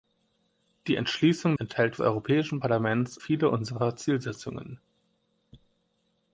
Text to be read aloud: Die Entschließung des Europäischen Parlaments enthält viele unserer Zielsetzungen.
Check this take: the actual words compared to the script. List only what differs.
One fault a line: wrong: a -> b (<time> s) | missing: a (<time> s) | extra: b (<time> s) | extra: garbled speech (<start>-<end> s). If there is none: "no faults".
wrong: des -> enthält (1.5 s)
missing: enthält (3.2 s)